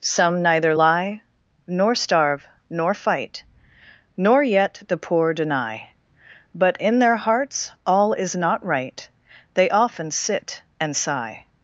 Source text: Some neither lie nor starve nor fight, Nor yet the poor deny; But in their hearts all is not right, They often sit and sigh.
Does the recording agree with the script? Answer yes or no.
yes